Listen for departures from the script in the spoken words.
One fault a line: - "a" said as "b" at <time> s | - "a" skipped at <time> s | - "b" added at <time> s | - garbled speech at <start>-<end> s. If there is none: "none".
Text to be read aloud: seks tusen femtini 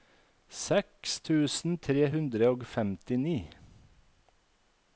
- "tre hundre og" added at 1.9 s